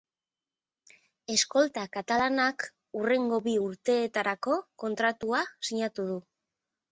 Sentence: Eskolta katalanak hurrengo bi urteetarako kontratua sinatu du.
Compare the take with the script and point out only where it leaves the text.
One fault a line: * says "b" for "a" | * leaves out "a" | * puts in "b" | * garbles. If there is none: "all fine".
all fine